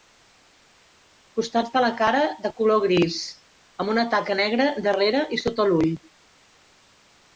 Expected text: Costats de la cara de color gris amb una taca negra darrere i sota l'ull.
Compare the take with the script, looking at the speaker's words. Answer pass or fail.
pass